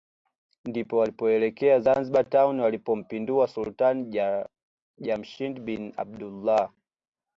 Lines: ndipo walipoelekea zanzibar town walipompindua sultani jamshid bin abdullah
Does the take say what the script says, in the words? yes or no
yes